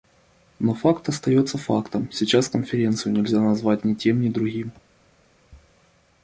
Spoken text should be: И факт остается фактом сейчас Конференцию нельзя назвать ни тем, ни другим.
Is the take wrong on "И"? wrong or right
wrong